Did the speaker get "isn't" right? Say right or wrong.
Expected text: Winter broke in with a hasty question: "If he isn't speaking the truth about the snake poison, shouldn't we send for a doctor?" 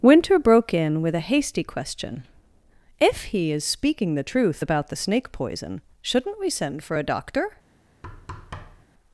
wrong